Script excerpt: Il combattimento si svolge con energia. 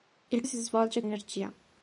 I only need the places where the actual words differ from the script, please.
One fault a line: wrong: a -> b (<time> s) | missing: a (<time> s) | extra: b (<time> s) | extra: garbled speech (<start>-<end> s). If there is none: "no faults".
missing: combattimento (0.4 s)
missing: con (1.0 s)